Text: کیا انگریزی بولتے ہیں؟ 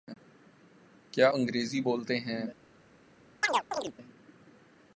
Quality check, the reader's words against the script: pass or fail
pass